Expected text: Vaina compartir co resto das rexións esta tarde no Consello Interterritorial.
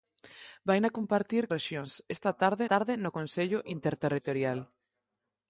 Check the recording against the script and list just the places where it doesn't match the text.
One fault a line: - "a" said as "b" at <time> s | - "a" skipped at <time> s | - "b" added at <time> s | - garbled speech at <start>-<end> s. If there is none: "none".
- "co resto das" skipped at 1.4 s
- "tarde" added at 2.7 s